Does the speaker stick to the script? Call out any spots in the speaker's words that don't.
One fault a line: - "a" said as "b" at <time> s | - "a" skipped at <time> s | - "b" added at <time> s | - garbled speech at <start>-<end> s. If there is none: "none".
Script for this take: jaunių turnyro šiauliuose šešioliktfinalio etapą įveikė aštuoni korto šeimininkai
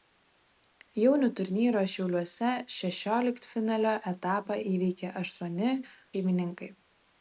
- "korto" skipped at 5.7 s